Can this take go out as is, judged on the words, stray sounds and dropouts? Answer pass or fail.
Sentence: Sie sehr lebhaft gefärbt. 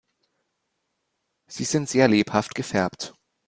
fail